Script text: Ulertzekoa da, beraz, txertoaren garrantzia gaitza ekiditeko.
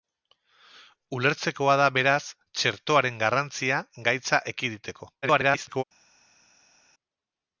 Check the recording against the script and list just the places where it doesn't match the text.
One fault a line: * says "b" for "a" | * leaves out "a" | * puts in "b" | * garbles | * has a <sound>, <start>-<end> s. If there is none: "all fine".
* garbles